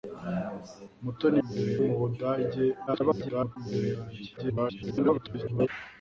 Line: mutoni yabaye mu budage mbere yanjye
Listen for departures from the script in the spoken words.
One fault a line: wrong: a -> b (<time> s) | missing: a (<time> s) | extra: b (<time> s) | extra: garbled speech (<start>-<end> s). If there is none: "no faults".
wrong: yabaye -> mbere (1.5 s)
extra: garbled speech (2.9-3.6 s)
extra: garbled speech (4.4-5.7 s)